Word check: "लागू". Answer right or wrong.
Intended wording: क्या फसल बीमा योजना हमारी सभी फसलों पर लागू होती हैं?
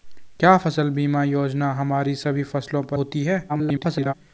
wrong